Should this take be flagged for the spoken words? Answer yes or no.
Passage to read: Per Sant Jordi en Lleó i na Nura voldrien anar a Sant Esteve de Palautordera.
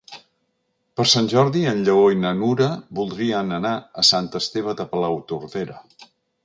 no